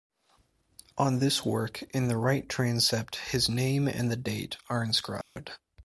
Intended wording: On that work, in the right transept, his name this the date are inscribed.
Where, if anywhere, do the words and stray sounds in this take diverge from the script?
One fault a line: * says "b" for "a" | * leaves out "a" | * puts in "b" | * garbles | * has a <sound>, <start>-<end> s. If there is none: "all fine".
* says "this" for "that"
* says "and" for "this"
* has a dropout, 5.2-5.4 s